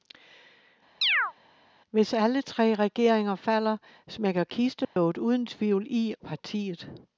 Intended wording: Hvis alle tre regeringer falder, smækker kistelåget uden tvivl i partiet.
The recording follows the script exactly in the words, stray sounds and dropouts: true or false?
false